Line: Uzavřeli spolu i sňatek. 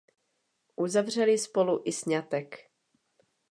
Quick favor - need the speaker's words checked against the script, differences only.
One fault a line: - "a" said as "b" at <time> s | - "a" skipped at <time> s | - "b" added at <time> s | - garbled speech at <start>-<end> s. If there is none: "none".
none